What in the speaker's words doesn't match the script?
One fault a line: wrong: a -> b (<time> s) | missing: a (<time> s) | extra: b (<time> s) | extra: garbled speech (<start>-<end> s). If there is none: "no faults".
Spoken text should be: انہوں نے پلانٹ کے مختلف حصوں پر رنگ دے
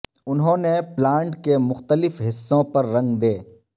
no faults